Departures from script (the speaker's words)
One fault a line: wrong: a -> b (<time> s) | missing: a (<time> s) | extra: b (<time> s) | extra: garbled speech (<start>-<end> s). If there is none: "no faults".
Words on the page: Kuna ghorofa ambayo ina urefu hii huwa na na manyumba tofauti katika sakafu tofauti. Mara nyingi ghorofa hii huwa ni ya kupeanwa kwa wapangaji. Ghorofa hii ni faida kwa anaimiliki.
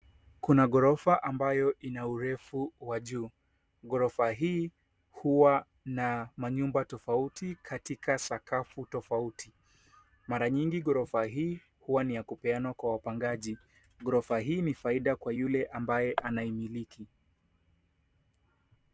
extra: wa juu Ghorofa (2.8 s)
missing: na (6.3 s)
extra: yule ambaye (15.3 s)